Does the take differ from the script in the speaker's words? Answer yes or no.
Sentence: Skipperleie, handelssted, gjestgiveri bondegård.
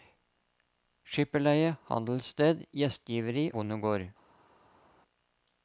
no